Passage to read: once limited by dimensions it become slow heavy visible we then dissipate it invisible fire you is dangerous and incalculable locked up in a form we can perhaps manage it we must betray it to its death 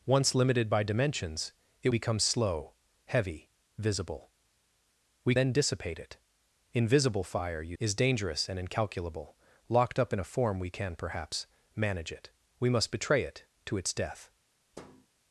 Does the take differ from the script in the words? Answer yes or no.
no